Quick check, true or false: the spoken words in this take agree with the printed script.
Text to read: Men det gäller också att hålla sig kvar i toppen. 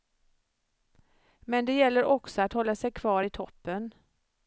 true